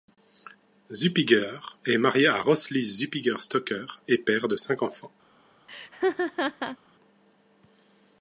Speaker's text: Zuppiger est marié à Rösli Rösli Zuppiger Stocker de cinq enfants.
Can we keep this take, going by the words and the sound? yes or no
no